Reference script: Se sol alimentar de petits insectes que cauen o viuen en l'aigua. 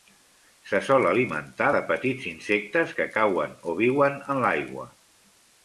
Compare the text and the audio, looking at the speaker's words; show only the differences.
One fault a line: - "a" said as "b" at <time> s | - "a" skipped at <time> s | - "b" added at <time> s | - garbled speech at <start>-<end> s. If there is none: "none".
none